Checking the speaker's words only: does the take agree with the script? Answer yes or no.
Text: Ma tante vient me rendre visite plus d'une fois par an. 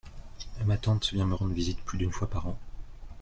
yes